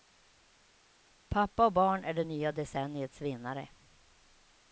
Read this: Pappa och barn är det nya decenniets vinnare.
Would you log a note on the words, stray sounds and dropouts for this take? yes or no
no